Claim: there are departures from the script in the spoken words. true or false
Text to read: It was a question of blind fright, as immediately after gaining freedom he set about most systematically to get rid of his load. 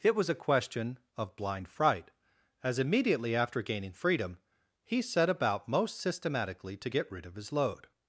false